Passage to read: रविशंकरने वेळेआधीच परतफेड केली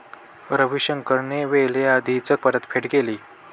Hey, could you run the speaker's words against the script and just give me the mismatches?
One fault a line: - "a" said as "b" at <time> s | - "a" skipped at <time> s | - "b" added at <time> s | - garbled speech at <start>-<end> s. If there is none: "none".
none